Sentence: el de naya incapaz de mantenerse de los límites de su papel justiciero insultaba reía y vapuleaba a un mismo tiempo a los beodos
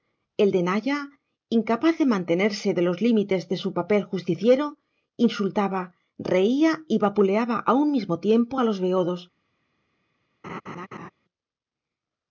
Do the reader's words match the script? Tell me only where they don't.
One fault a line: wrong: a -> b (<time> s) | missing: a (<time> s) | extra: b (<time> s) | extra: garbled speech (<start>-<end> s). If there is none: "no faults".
no faults